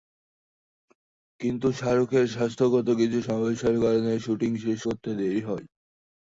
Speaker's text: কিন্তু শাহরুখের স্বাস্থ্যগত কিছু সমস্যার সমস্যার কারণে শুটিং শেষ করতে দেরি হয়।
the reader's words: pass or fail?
fail